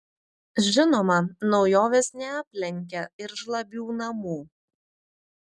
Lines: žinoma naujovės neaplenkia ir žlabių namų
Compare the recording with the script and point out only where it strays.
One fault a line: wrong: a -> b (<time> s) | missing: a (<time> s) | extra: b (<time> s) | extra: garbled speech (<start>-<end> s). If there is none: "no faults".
no faults